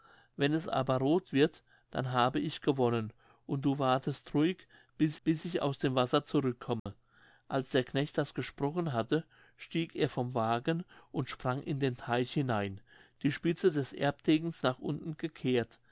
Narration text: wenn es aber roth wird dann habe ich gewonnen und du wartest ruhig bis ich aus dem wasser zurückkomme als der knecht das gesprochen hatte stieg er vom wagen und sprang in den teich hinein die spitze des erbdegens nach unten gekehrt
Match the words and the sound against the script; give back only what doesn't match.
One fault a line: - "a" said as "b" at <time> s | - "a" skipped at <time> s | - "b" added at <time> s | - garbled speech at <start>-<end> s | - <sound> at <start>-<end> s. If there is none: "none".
- "bis" added at 5.2 s
- dropout at 6.8-6.9 s